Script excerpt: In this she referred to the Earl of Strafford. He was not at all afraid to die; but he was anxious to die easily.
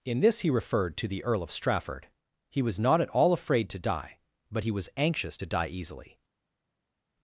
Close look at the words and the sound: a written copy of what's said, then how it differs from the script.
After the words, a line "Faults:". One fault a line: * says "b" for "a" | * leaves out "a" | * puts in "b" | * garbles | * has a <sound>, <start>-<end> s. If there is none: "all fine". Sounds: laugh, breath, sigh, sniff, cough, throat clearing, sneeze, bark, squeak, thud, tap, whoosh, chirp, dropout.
In this he referred to the Earl of Strafford. He was not at all afraid to die; but he was anxious to die easily.
Faults:
* says "he" for "she"